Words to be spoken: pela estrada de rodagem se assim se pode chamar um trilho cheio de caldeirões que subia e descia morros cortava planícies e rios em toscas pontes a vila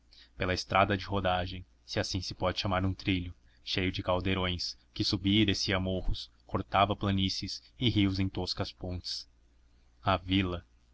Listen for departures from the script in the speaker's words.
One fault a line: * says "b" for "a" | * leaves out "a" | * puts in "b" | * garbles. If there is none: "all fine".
all fine